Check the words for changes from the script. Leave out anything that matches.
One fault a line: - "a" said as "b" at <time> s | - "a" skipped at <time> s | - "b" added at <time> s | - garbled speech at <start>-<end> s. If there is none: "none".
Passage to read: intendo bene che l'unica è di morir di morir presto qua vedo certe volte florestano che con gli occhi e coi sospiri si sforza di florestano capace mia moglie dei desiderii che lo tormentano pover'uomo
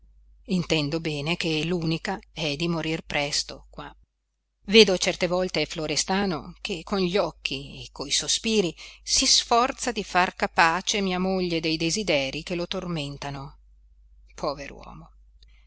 - "di morir" skipped at 3.0 s
- "florestano" said as "far" at 10.0 s